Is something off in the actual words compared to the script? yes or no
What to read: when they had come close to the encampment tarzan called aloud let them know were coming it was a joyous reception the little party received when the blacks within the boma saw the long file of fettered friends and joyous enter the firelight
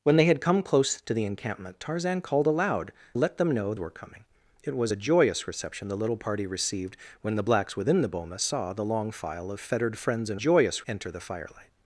no